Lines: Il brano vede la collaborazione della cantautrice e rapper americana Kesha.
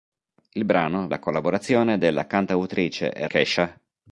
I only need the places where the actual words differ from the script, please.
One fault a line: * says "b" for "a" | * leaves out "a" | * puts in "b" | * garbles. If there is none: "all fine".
* leaves out "vede"
* leaves out "rapper americana"